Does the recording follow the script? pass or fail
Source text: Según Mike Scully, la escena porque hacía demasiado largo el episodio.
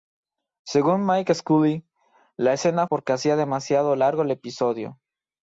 pass